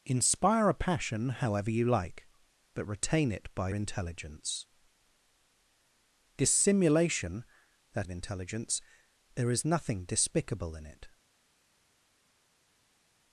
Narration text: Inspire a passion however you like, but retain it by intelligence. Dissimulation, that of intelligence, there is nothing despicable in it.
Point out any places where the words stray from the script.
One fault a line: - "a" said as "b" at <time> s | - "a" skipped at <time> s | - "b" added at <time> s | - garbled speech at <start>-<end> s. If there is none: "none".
none